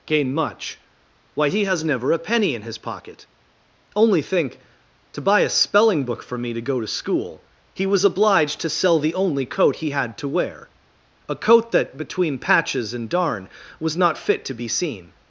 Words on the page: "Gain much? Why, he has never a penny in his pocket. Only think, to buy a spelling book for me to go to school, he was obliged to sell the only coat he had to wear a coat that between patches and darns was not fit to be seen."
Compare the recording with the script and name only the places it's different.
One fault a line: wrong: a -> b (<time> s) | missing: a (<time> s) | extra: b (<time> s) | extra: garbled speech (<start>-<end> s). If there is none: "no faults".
wrong: darns -> darn (13.1 s)